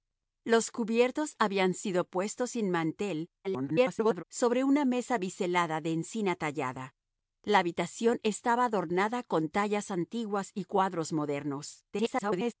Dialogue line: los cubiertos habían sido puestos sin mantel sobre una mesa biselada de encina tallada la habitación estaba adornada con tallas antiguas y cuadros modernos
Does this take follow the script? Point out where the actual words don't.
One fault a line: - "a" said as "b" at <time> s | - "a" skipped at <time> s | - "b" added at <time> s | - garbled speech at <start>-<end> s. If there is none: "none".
- garbled speech at 3.4-4.2 s
- garbled speech at 11.9-12.5 s